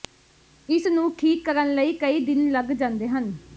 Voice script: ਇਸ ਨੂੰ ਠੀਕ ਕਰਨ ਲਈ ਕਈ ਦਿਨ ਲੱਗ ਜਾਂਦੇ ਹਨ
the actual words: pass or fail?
pass